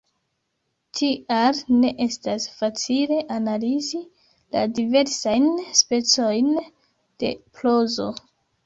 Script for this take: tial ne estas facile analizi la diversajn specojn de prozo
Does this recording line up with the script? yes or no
yes